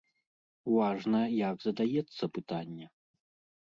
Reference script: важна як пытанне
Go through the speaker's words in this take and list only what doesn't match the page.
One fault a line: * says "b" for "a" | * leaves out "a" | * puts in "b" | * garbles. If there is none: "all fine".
* puts in "задаецца"